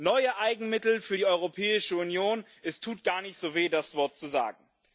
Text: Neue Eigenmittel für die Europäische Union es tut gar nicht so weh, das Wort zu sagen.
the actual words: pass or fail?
pass